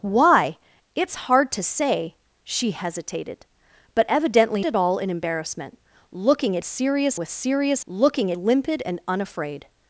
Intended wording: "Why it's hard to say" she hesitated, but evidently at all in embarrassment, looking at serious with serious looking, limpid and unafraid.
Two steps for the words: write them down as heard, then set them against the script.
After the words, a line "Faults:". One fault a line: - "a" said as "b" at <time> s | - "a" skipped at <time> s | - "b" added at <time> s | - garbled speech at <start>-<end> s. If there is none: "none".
"Why it's hard to say" she hesitated, but evidently at all in embarrassment, looking at serious with serious looking, limpid and unafraid.
Faults:
none